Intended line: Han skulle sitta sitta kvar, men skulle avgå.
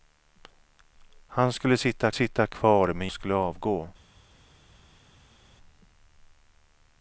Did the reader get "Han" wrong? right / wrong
right